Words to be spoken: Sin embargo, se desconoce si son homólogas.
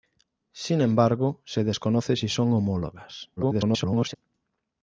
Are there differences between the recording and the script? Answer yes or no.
yes